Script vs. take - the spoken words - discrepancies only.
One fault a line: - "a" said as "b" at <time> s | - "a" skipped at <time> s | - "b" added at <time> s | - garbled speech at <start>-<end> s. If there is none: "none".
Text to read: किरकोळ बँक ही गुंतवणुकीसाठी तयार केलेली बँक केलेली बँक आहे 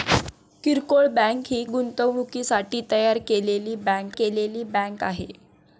none